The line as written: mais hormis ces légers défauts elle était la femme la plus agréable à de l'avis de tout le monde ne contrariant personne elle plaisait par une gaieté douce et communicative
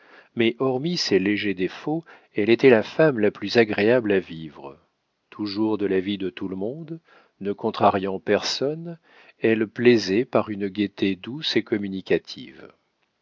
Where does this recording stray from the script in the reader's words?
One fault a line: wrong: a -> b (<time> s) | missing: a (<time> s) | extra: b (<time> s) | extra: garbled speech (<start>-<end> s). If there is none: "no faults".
extra: vivre toujours (4.2 s)